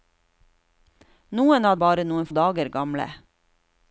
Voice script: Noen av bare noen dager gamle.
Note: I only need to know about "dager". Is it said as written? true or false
true